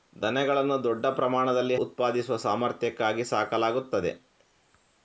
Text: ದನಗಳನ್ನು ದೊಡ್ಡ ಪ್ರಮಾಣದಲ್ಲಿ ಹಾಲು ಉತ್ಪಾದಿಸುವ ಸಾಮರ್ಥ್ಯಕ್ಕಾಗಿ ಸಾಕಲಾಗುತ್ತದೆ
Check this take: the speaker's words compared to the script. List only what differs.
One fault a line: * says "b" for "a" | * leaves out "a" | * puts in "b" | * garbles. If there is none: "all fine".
* leaves out "ಹಾಲು"